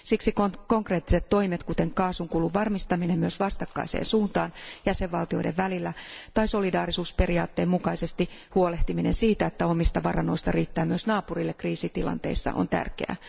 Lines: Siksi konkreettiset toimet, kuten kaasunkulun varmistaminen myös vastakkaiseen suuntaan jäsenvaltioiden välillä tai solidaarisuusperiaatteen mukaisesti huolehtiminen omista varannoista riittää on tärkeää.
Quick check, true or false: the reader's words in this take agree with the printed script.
false